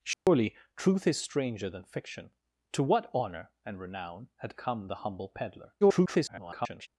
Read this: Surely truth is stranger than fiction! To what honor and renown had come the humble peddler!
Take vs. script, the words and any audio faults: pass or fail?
fail